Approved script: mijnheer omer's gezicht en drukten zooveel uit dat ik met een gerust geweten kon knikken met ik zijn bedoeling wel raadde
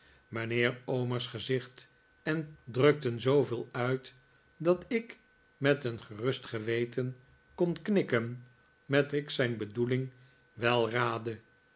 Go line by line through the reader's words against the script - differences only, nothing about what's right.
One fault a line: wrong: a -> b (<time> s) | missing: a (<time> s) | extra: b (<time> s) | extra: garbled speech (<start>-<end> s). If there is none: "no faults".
no faults